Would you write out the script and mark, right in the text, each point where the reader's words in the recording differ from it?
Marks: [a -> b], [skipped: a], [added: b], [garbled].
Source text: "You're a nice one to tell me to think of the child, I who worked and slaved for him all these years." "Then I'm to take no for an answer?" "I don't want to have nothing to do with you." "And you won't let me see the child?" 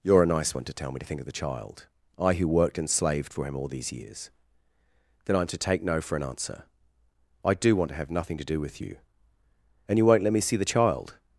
"You're a nice one to tell me to think of the child, I who worked and slaved for him all these years." "Then I'm to take no for an answer?" "I [don't -> do] want to have nothing to do with you." "And you won't let me see the child?"